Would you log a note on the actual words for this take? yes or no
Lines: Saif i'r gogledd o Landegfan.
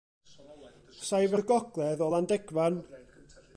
no